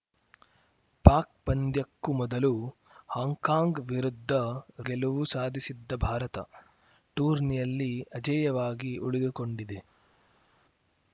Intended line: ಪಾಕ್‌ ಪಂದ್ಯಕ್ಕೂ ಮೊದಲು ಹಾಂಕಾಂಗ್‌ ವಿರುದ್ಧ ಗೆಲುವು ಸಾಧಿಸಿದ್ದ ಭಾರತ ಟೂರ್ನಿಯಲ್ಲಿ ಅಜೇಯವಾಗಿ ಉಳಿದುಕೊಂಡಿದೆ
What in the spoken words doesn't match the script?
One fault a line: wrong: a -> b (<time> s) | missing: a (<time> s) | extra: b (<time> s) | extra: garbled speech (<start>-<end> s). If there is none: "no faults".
no faults